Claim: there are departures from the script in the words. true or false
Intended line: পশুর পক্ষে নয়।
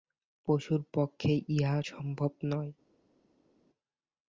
true